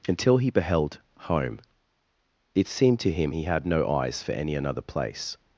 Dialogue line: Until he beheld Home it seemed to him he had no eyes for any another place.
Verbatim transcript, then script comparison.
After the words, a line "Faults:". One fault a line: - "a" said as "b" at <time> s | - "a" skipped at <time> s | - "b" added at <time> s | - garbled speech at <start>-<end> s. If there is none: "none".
Until he beheld Home it seemed to him he had no eyes for any another place.
Faults:
none